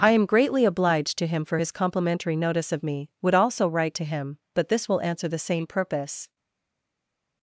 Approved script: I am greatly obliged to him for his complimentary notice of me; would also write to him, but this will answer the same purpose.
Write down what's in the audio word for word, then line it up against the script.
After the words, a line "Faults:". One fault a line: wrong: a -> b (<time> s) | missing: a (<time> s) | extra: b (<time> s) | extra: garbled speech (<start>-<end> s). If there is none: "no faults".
I am greatly obliged to him for his complimentary notice of me; would also write to him, but this will answer the same purpose.
Faults:
no faults